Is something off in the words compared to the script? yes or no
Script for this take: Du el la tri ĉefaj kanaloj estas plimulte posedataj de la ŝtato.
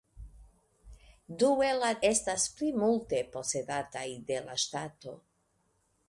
yes